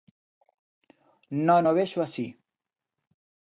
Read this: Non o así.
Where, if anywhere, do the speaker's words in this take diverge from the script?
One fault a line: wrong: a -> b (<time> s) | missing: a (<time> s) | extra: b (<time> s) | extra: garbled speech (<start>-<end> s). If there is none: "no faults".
extra: vexo (1.8 s)